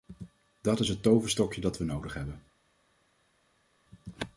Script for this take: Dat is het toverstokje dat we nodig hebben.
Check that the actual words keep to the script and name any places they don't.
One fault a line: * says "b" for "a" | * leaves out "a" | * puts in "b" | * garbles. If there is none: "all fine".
all fine